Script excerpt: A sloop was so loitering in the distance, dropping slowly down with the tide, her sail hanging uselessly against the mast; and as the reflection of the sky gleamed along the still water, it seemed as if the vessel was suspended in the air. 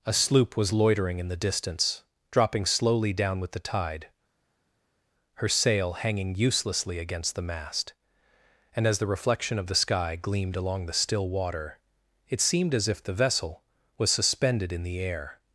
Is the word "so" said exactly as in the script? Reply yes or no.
no